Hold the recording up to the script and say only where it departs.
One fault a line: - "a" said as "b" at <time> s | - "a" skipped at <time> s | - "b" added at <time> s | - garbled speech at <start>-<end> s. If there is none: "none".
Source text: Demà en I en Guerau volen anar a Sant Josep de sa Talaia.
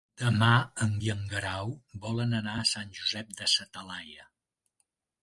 none